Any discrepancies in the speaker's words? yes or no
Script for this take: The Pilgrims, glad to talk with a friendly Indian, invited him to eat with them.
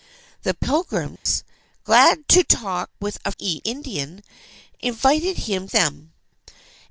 yes